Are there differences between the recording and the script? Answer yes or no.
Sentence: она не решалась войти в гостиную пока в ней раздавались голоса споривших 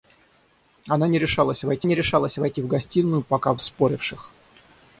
yes